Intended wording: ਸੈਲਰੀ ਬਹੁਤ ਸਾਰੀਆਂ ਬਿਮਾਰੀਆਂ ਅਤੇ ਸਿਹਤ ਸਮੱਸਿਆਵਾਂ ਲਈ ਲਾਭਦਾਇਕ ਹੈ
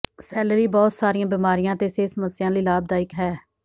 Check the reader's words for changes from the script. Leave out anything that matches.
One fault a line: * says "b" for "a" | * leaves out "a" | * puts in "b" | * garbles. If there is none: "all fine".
all fine